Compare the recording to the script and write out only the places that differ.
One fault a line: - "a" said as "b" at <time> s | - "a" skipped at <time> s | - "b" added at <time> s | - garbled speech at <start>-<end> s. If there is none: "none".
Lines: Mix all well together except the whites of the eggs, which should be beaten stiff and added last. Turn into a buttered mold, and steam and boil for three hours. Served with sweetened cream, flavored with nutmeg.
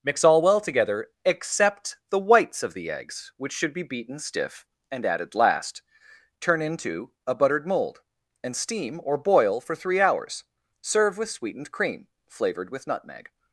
- "and" said as "or" at 9.0 s
- "Served" said as "Serve" at 10.8 s